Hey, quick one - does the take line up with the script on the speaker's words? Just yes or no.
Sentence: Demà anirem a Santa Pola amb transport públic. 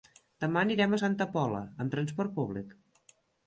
yes